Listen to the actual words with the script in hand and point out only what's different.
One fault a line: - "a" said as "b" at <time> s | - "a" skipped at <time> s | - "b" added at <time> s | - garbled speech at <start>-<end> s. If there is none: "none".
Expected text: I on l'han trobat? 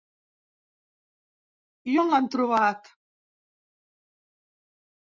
none